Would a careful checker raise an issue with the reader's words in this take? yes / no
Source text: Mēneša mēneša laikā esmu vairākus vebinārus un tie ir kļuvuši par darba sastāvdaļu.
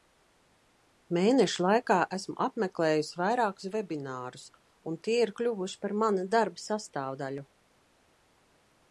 yes